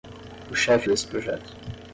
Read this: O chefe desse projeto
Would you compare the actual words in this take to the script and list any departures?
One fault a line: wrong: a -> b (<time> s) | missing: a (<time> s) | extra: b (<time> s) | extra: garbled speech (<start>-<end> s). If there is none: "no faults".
no faults